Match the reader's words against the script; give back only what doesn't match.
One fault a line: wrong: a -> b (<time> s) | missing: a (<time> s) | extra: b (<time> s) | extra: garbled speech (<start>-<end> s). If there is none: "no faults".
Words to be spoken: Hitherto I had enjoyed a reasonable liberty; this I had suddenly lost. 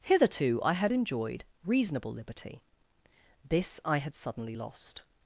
missing: a (1.4 s)